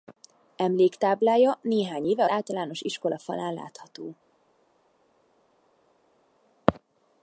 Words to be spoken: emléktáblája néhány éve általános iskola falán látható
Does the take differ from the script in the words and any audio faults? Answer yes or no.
no